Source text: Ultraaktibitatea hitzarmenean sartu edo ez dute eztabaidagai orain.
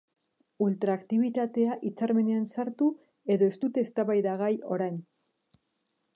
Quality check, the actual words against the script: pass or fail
pass